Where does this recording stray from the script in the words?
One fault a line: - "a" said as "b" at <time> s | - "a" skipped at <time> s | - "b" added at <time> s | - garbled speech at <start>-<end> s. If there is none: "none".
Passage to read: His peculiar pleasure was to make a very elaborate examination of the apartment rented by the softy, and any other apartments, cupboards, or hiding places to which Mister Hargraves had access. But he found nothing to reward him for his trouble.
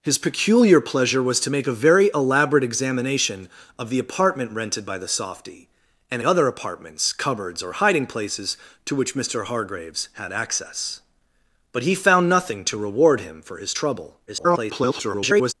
- "any" skipped at 6.2 s
- garbled speech at 14.3-15.5 s